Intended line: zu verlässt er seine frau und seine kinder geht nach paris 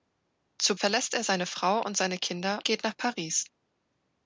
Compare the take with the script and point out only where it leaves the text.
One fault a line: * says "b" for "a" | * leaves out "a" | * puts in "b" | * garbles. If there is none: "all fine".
all fine